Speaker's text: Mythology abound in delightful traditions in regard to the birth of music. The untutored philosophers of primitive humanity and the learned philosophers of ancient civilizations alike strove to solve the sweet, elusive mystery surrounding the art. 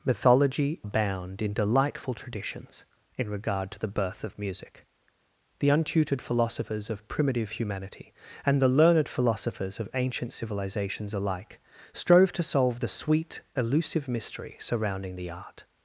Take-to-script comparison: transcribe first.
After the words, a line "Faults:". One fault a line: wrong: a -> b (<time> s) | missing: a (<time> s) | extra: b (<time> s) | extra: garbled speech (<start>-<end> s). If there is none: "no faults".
Mythology abound in delightful traditions in regard to the birth of music. The untutored philosophers of primitive humanity and the learned philosophers of ancient civilizations alike strove to solve the sweet, elusive mystery surrounding the art.
Faults:
no faults